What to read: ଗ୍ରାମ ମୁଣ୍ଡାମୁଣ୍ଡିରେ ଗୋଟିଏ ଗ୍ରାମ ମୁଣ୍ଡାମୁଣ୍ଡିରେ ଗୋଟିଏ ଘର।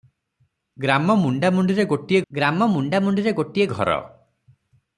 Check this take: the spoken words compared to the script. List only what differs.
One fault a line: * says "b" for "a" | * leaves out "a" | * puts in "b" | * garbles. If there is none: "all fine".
all fine